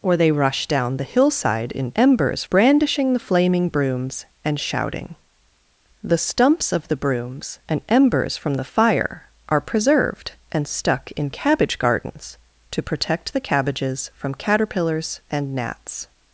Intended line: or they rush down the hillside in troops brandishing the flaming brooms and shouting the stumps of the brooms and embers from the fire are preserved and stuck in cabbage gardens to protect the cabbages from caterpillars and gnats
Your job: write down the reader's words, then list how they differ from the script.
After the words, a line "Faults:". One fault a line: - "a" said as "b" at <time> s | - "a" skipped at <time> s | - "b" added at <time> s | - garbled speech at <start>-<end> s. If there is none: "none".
or they rush down the hillside in embers brandishing the flaming brooms and shouting the stumps of the brooms and embers from the fire are preserved and stuck in cabbage gardens to protect the cabbages from caterpillars and gnats
Faults:
- "troops" said as "embers" at 2.0 s